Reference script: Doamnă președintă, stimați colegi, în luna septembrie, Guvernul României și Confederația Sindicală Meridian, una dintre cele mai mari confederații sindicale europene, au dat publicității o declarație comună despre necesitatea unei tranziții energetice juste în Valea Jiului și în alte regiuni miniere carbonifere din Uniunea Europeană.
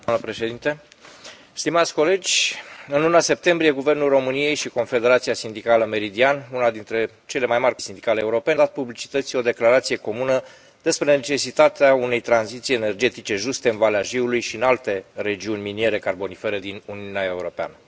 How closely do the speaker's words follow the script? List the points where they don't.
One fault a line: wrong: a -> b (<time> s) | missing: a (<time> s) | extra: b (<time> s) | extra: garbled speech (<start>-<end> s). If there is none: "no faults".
missing: confederații (7.8 s)
missing: au (8.6 s)